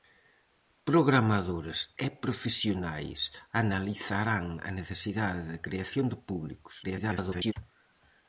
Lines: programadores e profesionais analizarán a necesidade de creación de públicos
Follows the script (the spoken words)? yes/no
no